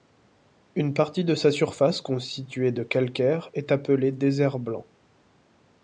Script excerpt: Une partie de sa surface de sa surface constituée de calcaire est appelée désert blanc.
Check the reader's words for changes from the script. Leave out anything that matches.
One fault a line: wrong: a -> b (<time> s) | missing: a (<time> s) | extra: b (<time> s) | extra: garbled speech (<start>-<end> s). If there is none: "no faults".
missing: de sa surface (2.0 s)